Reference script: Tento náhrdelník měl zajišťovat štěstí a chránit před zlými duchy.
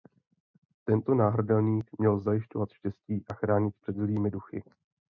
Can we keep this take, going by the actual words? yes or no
yes